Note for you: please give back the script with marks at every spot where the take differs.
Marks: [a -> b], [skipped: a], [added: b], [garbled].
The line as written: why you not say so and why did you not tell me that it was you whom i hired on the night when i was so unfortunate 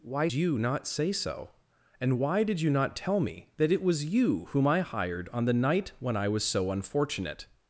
why you not say so and why did you not tell me that it was you whom i hired on the night when i was so unfortunate